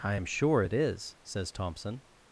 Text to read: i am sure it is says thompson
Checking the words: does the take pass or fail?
pass